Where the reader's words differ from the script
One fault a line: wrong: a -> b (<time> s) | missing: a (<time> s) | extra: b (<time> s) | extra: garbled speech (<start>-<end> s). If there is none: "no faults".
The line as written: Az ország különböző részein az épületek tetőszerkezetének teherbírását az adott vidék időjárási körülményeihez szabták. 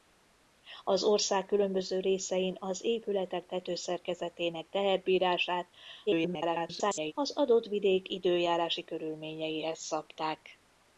extra: garbled speech (6.1-7.1 s)